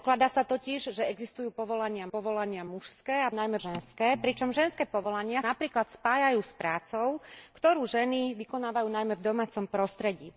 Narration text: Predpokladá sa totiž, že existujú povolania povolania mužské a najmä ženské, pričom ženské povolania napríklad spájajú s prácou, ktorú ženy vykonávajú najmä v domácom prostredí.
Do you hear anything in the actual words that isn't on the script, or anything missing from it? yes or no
no